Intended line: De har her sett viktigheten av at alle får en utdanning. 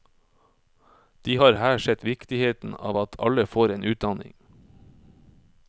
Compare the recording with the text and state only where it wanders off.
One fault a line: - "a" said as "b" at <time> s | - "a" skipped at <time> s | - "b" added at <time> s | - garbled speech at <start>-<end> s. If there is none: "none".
none